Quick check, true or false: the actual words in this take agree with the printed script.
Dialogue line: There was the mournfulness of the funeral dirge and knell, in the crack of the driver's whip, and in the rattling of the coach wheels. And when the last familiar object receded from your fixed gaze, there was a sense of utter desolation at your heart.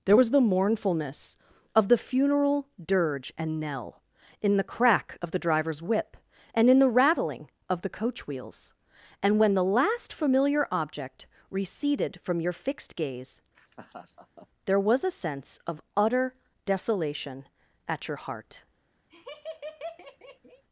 true